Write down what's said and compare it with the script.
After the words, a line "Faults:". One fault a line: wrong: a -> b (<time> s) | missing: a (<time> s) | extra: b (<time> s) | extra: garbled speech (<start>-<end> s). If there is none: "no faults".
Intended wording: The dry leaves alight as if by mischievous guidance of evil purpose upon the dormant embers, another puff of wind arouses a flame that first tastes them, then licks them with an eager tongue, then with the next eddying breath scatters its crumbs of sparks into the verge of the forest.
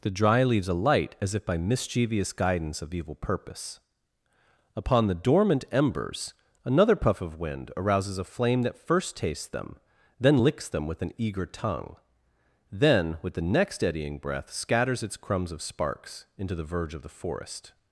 The dry leaves alight as if by mischievous guidance of evil purpose upon the dormant embers, another puff of wind arouses a flame that first tastes them, then licks them with an eager tongue, then with the next eddying breath scatters its crumbs of sparks into the verge of the forest.
Faults:
no faults